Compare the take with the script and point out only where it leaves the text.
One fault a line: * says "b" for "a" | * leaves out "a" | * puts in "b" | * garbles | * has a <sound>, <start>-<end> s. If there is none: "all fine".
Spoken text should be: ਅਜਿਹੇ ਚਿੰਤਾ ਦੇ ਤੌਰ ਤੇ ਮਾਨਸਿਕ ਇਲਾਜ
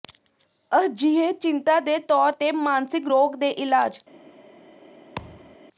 * puts in "ਰੋਗ ਦੇ"
* has a thud, 5.2-5.6 s